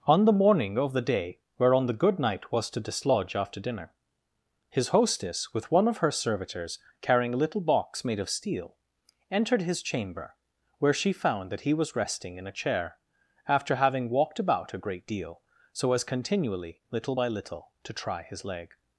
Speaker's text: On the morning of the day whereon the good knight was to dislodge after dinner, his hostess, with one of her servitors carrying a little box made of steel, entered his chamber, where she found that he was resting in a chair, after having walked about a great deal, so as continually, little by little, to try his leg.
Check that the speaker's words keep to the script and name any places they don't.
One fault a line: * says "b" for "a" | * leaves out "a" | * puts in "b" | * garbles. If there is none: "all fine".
all fine